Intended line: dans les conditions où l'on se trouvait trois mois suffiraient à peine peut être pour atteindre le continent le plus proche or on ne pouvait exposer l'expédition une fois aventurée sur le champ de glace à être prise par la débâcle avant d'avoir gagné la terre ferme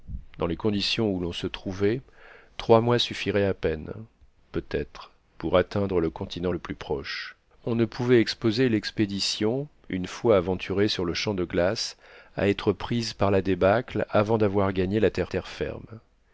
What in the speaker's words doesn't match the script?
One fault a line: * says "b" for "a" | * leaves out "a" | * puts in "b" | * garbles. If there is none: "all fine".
* leaves out "or"
* puts in "terre"